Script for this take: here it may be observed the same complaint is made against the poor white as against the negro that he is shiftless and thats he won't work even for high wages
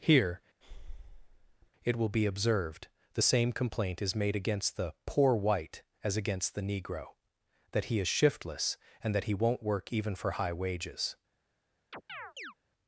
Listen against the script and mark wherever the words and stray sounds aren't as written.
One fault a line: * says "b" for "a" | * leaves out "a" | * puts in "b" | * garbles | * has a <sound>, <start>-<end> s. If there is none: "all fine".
* has a breath, 0.6-1.7 s
* says "will" for "may"
* says "that" for "thats"
* has a chirp, 11.9-12.5 s